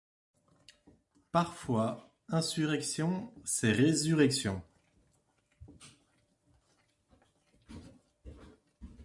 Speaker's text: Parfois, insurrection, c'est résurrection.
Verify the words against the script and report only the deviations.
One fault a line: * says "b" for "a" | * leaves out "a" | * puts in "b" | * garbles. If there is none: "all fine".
all fine